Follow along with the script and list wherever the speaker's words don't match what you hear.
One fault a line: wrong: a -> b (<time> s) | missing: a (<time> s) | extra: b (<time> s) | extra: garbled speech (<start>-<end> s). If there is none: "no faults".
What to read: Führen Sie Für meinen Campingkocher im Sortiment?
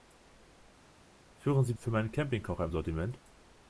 no faults